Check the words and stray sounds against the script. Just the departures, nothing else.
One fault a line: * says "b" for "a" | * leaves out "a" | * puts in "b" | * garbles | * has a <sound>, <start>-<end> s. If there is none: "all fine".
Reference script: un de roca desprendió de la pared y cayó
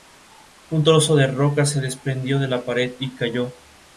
* puts in "trozo"
* puts in "se"